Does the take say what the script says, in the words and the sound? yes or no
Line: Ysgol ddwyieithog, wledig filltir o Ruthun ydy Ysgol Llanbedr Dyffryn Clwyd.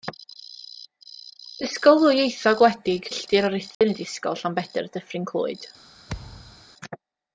no